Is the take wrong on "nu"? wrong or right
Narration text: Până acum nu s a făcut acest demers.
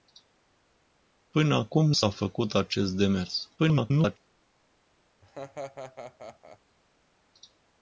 wrong